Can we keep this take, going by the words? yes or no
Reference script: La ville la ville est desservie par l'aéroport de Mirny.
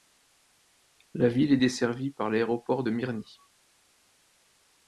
no